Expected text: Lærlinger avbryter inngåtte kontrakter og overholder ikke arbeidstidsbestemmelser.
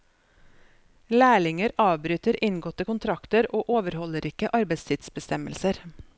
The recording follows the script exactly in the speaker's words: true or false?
true